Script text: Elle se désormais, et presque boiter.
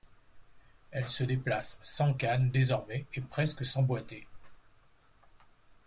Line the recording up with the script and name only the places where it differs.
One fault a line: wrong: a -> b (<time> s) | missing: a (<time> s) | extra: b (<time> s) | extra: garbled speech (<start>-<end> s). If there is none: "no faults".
extra: déplace sans canne (1.2 s)
extra: sans (3.6 s)